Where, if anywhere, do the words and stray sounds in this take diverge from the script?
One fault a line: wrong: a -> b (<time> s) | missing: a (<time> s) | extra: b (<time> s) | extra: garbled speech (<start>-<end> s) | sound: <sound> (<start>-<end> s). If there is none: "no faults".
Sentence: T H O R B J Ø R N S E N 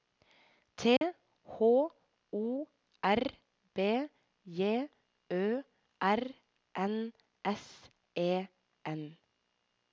sound: dropout (1.0-1.0 s)